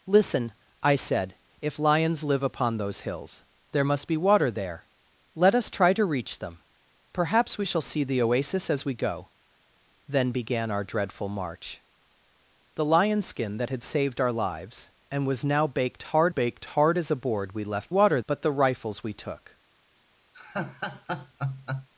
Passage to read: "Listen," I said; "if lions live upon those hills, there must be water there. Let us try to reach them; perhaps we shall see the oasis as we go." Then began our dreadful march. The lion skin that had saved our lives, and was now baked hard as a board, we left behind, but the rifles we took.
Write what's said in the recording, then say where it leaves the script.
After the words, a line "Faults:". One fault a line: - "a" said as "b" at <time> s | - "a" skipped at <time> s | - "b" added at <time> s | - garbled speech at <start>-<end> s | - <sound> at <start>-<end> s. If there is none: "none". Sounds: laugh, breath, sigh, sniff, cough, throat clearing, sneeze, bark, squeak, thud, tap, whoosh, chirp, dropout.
"Listen," I said; "if lions live upon those hills, there must be water there. Let us try to reach them; perhaps we shall see the oasis as we go." Then began our dreadful march. The lion skin that had saved our lives, and was now baked hard baked hard as a board, we left water, but the rifles we took.
Faults:
- "baked hard" added at 16.3 s
- "behind" said as "water" at 17.9 s
- laugh at 20.3-21.9 s